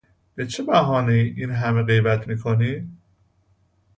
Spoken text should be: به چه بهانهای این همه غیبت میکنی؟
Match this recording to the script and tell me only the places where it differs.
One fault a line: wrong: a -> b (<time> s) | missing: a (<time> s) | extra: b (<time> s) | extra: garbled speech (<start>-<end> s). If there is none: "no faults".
no faults